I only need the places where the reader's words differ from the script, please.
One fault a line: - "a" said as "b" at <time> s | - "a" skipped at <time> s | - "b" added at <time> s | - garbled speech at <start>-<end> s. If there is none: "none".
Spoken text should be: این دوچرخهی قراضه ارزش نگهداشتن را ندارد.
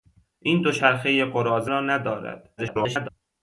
- "ارزش نگهداشتن" skipped at 1.7 s
- garbled speech at 2.6-3.1 s